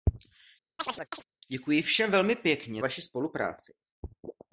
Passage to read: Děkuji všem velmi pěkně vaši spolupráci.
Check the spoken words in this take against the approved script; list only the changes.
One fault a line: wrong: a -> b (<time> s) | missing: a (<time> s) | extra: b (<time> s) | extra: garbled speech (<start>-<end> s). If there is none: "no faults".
no faults